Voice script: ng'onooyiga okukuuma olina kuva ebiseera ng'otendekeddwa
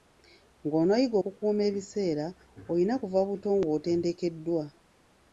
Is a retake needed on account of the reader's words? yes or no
yes